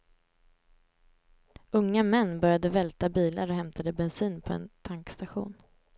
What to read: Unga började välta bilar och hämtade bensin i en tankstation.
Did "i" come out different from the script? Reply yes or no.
yes